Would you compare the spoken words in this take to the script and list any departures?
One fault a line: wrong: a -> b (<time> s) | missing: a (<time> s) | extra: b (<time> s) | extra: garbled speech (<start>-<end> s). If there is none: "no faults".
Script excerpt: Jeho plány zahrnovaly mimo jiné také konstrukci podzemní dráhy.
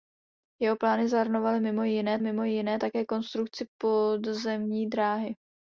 extra: mimo jiné (2.2 s)